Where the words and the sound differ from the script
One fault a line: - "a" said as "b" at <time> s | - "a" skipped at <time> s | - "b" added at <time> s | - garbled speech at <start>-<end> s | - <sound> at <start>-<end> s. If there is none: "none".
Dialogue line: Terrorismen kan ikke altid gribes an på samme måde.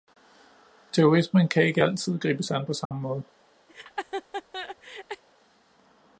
- dropout at 2.9-2.9 s
- laugh at 3.7-5.2 s